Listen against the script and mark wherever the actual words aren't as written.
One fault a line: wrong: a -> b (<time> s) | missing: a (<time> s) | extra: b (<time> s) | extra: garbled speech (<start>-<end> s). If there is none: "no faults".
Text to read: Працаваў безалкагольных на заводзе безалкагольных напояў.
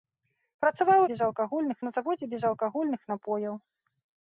no faults